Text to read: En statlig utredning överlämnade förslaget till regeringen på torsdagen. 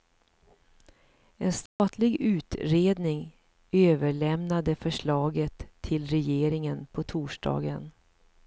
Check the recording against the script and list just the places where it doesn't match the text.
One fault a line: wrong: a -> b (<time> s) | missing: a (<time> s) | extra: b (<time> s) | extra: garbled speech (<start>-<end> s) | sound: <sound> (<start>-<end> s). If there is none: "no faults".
sound: dropout (1.7-1.8 s)